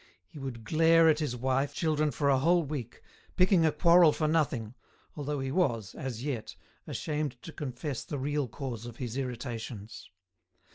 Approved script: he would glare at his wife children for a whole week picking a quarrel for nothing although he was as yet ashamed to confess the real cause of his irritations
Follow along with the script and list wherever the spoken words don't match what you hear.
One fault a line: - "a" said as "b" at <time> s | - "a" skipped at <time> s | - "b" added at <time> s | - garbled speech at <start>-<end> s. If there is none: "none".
none